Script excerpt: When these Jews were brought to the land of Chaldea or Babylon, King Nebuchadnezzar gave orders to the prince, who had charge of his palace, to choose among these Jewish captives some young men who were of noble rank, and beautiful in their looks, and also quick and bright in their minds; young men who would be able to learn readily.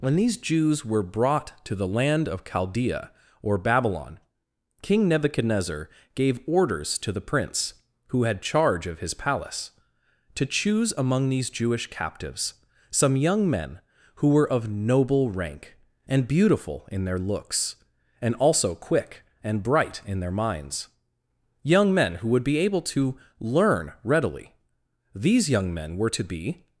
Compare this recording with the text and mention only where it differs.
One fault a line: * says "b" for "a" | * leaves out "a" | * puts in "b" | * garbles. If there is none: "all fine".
* puts in "These young men were to be"